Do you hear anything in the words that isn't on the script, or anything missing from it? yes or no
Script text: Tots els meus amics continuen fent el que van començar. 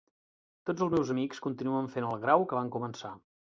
yes